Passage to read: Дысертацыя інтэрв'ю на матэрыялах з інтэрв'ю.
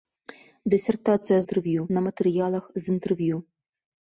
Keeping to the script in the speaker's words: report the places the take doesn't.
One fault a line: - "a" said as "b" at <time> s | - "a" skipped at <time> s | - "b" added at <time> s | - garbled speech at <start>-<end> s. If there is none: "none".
none